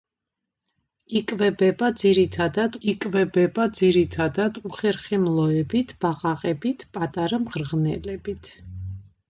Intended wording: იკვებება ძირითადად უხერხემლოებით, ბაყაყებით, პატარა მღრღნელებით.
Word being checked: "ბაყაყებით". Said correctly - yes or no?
yes